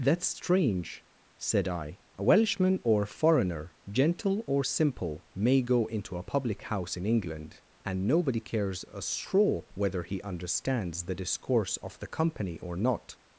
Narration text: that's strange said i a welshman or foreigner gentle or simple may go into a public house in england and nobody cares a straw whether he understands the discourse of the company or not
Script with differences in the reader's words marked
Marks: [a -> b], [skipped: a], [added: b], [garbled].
that's strange said i a welshman or foreigner gentle or simple may go into a public house in england and nobody cares a straw whether he understands the discourse of the company or not